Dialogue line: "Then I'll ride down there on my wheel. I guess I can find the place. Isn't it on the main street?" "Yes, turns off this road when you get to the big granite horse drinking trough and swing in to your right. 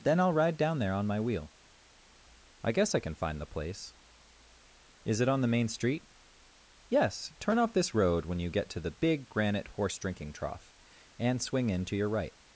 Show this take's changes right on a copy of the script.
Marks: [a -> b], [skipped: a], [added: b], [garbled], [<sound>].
"Then I'll ride down there on my wheel. I guess I can find the place. [Isn't -> Is] it on the main street?" "Yes, [turns -> turn] off this road when you get to the big granite horse drinking trough and swing in to your right.